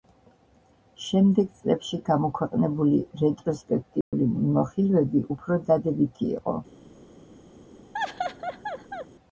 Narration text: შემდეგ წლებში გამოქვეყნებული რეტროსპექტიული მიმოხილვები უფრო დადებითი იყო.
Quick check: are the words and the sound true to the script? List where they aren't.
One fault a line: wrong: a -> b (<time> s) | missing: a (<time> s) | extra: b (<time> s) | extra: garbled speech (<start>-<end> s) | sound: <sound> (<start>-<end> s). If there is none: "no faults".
sound: dropout (4.0-4.1 s)
sound: laugh (7.9-9.1 s)